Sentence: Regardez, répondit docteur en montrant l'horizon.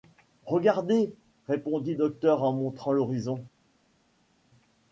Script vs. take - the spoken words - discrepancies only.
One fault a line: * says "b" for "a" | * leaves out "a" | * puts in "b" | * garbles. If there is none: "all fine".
all fine